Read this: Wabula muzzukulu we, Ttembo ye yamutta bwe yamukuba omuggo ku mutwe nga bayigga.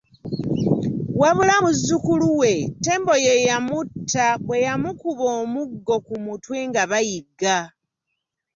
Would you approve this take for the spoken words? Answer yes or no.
yes